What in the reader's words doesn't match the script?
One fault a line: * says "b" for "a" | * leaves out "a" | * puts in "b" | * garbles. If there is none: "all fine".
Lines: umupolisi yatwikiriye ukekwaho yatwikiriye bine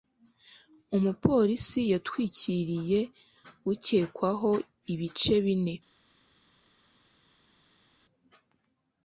* says "ibice" for "yatwikiriye"